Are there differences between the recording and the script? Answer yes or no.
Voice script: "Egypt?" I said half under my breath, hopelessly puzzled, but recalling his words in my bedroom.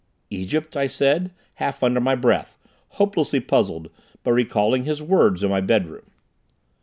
no